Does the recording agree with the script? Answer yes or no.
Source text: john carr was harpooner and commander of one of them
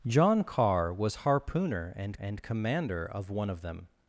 no